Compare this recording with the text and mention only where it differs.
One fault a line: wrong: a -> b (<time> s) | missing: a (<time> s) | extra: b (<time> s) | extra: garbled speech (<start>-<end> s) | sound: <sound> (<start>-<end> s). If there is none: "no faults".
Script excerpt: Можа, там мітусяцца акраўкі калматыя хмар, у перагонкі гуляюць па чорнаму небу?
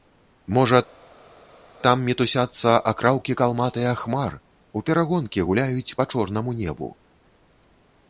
no faults